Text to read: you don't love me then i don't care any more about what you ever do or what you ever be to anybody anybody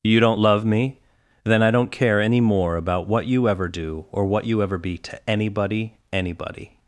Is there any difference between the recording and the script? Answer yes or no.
no